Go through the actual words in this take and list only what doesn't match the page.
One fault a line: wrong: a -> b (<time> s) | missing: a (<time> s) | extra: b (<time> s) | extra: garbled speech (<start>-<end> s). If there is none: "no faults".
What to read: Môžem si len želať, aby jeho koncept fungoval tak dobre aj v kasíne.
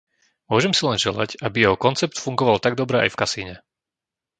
no faults